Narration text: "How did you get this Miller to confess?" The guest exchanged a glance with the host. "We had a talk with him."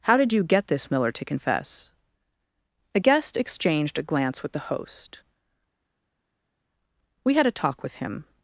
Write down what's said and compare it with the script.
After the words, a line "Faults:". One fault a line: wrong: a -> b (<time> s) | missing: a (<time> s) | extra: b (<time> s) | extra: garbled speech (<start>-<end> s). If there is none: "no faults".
"How did you get this Miller to confess?" The guest exchanged a glance with the host. "We had a talk with him."
Faults:
no faults